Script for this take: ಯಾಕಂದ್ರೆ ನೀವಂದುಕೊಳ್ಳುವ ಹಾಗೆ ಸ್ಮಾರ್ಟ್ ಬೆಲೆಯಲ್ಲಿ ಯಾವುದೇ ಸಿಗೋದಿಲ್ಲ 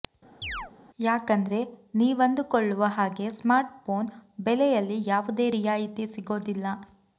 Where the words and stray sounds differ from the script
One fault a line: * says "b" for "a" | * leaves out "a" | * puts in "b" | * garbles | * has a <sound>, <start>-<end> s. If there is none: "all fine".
* has a chirp, 0.4-0.7 s
* puts in "ಫೋನ್"
* puts in "ರಿಯಾಯಿತಿ"